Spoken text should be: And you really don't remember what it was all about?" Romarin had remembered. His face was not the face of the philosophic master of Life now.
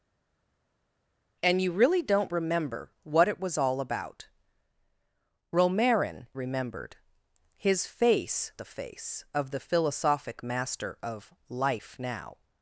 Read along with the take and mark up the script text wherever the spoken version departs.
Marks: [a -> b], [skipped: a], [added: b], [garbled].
And you really don't remember what it was all about?" Romarin [skipped: had] remembered. His face [skipped: was not] the face of the philosophic master of Life now.